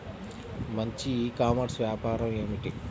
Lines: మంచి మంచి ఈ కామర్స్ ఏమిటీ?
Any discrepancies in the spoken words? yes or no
yes